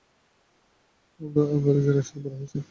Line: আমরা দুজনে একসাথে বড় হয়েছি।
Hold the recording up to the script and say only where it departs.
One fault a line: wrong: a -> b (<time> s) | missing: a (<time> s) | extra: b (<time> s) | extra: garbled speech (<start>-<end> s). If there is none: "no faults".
no faults